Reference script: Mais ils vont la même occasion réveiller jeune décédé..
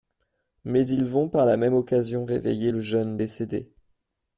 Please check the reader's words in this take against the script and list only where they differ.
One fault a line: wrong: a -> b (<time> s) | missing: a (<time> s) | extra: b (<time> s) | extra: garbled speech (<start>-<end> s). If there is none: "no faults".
extra: par (1.3 s)
extra: le (2.7 s)